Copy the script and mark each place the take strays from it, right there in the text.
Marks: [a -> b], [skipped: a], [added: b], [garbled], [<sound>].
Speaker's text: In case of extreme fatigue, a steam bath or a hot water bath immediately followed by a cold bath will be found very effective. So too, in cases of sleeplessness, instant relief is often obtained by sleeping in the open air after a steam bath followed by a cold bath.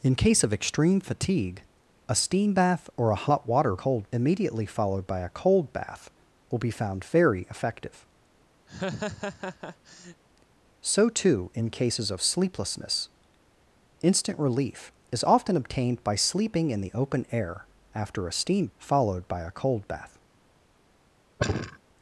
In case of extreme fatigue, a steam bath or a hot water [bath -> cold] immediately followed by a cold bath will be found very effective. [laugh] So too, in cases of sleeplessness, instant relief is often obtained by sleeping in the open air after a steam [skipped: bath] followed by a cold bath. [sigh]